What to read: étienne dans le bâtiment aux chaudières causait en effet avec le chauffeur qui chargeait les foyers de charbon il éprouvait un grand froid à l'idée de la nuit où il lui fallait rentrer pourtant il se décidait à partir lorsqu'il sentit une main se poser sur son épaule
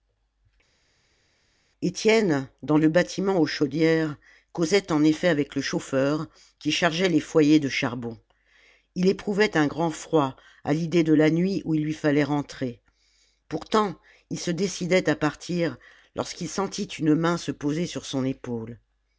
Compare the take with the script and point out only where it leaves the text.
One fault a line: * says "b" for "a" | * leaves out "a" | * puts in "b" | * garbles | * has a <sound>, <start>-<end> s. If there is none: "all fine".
all fine